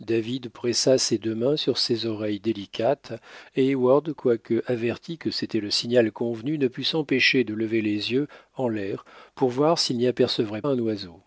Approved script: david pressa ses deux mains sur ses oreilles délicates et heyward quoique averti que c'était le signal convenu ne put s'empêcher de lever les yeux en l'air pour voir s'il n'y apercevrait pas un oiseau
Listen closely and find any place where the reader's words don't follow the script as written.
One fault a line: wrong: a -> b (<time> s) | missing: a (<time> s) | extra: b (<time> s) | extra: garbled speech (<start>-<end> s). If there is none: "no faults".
missing: pas (10.6 s)